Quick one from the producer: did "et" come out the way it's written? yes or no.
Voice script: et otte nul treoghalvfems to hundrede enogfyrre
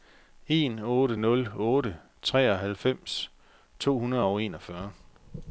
no